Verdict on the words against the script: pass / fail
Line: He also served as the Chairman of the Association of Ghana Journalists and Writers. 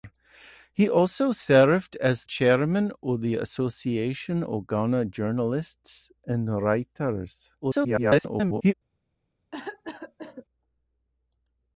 fail